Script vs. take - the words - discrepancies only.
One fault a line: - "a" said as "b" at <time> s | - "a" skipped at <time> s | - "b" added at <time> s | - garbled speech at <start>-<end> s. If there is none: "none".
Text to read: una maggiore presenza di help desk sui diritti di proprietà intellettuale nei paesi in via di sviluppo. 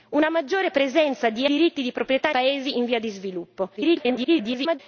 - "help desk sui" skipped at 1.4 s
- "intellettuale nei" skipped at 2.3 s
- garbled speech at 3.8-4.8 s